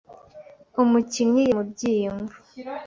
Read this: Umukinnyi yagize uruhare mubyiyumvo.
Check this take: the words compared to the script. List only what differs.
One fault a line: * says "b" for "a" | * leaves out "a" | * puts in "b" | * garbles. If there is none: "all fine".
* leaves out "yagize uruhare"